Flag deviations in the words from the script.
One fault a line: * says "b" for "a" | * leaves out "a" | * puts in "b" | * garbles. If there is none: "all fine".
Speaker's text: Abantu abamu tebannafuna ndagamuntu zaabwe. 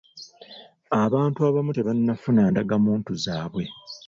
all fine